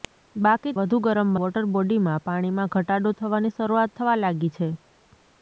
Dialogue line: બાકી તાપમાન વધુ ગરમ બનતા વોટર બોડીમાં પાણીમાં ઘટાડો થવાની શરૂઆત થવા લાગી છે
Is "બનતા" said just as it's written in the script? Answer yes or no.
no